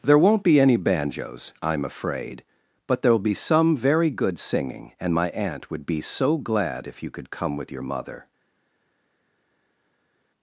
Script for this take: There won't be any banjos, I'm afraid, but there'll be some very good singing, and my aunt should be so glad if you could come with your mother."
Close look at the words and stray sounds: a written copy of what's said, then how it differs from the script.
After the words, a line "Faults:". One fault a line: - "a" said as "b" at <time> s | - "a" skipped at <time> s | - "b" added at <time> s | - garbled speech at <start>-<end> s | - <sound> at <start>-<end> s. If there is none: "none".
There won't be any banjos, I'm afraid, but there'll be some very good singing, and my aunt would be so glad if you could come with your mother."
Faults:
- "should" said as "would" at 5.7 s